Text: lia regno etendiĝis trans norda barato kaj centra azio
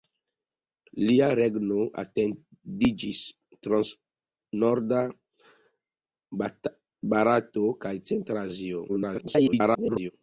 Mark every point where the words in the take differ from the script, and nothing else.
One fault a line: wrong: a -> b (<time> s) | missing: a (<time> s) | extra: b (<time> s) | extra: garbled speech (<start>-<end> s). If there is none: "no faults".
extra: garbled speech (8.9-10.1 s)